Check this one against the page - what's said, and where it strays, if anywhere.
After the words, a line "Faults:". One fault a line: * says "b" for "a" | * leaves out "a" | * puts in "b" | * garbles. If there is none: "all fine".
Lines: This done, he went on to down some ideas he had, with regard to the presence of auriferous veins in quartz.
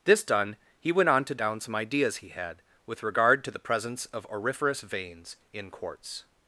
This done, he went on to down some ideas he had, with regard to the presence of auriferous veins in quartz.
Faults:
all fine